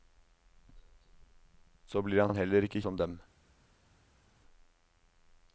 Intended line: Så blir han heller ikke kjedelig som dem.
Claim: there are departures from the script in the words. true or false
true